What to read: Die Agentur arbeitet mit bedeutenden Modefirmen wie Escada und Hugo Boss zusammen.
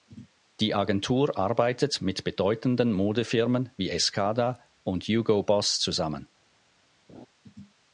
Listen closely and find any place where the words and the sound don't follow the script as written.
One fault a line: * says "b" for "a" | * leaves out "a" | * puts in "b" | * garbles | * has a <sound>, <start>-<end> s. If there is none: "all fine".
* has a laugh, 7.1-7.3 s